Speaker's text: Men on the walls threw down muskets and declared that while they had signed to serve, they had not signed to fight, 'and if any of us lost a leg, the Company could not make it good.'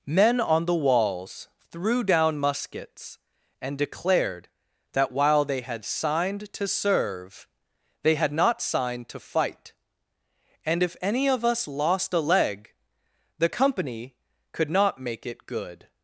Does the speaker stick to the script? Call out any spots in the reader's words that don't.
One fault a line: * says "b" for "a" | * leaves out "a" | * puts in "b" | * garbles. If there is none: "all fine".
all fine